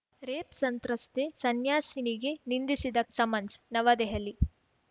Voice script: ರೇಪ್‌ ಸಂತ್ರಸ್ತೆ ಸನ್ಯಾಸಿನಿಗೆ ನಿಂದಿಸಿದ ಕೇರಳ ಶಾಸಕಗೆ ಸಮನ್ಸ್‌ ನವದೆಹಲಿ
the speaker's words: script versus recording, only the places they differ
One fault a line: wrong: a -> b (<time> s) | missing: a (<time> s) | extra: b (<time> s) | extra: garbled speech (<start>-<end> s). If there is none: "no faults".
missing: ಕೇರಳ ಶಾಸಕಗೆ (3.0 s)